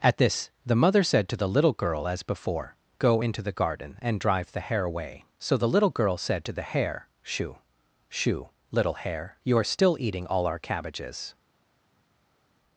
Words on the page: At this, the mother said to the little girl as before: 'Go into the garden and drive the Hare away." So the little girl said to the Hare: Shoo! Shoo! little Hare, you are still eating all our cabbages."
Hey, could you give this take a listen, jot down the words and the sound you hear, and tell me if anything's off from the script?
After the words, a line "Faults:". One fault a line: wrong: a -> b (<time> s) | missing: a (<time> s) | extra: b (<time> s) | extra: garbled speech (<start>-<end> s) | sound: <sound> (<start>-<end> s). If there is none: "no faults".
At this, the mother said to the little girl as before: 'Go into the garden and drive the Hare away." So the little girl said to the Hare: Shoo! Shoo! little Hare, you are still eating all our cabbages."
Faults:
no faults